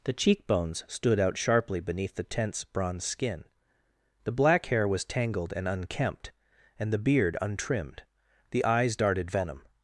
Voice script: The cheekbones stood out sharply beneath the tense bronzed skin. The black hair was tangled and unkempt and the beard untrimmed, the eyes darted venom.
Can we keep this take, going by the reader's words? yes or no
no